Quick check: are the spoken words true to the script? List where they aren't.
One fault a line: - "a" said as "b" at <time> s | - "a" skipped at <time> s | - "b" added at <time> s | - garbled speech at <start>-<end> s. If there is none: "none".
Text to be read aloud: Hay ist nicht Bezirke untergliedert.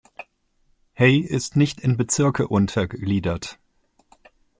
- "in" added at 1.8 s